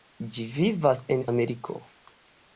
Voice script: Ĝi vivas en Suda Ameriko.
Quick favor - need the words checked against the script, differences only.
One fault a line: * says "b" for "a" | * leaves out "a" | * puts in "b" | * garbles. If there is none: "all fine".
* leaves out "Suda"